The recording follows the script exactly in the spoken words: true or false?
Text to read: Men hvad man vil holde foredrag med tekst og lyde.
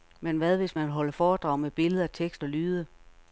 false